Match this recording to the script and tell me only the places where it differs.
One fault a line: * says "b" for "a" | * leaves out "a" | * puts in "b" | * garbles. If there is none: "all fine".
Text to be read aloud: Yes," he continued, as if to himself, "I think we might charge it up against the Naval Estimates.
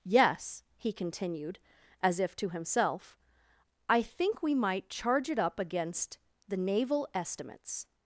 all fine